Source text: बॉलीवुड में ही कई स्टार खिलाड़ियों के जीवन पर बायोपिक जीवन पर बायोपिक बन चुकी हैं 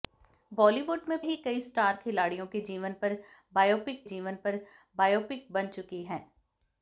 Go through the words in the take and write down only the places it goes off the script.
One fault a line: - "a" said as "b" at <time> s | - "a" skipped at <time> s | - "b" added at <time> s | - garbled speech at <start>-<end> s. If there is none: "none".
none